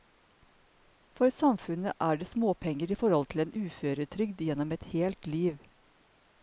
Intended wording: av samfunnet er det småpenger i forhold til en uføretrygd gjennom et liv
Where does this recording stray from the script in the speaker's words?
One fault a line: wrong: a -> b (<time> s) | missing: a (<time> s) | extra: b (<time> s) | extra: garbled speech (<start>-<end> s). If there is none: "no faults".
wrong: av -> for (1.2 s)
extra: helt (5.0 s)